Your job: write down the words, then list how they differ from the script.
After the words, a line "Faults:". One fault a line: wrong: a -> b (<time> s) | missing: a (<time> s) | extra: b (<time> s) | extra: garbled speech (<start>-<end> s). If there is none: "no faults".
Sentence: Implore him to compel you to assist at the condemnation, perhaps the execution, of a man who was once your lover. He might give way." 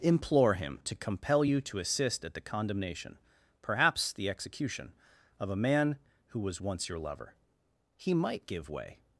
Implore him to compel you to assist at the condemnation, perhaps the execution, of a man who was once your lover. He might give way."
Faults:
no faults